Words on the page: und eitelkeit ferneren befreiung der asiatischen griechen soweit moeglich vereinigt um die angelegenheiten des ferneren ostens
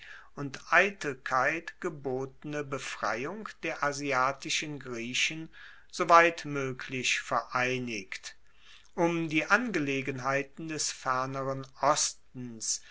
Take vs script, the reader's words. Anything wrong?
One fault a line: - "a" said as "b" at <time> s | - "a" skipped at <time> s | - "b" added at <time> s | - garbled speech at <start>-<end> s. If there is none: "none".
- "ferneren" said as "gebotene" at 1.8 s